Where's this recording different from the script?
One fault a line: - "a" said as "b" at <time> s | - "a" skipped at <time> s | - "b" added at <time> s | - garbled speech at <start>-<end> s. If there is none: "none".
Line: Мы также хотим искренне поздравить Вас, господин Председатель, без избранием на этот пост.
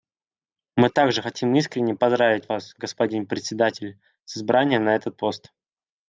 - "без" said as "с" at 4.2 s